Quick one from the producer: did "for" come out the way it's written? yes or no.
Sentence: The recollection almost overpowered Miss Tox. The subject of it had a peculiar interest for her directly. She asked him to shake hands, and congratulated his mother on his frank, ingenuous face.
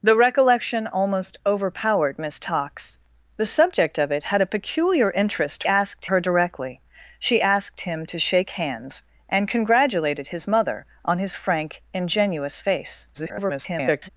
no